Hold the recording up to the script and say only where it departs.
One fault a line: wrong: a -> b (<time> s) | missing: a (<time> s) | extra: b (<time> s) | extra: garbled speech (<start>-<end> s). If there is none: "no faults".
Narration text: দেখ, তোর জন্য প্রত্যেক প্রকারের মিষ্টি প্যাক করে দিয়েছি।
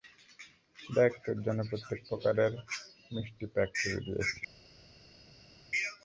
no faults